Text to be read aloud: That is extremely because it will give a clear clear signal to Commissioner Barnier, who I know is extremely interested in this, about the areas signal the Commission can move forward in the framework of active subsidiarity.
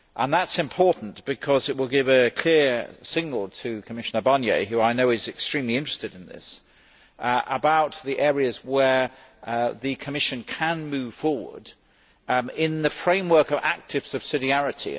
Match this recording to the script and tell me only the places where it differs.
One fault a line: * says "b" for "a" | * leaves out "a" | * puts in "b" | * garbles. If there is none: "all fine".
* says "important" for "extremely"
* leaves out "clear"
* says "where" for "signal"